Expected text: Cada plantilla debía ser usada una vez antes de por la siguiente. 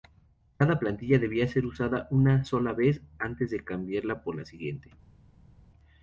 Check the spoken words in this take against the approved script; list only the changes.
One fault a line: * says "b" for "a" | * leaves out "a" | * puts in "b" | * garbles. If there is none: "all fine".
* puts in "sola"
* puts in "cambiarla"